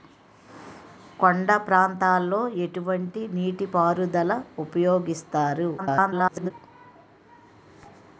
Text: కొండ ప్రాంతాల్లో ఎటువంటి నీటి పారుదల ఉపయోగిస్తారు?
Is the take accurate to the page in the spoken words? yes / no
no